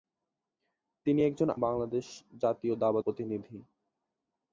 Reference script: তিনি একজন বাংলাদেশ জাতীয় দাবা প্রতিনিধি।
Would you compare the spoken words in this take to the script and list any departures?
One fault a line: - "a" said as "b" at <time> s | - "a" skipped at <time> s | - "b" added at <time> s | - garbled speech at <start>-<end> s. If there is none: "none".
none